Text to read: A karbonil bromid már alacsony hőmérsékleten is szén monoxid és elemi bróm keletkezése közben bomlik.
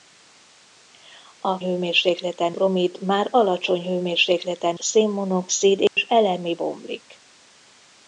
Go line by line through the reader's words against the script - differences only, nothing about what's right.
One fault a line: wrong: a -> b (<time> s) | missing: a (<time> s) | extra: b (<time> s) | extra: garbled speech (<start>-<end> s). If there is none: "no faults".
wrong: karbonil -> hőmérsékleten (1.6 s)
missing: is (4.8 s)
missing: bróm keletkezése közben (6.6 s)